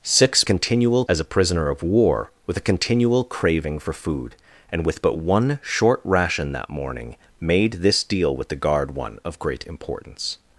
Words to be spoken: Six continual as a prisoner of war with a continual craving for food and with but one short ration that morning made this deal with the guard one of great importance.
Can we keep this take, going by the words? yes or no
yes